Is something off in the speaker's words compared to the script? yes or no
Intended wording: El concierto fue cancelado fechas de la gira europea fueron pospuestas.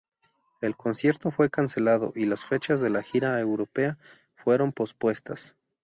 yes